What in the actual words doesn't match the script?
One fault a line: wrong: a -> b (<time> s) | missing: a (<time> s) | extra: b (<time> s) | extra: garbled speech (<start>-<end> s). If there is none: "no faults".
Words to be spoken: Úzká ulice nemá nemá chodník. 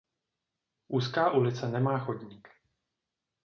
missing: nemá (2.0 s)